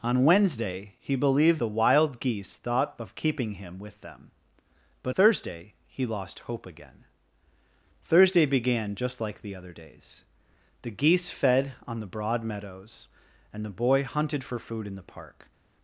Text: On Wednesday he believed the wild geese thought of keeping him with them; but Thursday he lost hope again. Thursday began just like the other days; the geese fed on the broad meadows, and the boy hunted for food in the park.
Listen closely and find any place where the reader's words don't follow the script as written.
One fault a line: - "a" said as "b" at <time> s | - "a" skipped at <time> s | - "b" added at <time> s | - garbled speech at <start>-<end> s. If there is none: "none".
none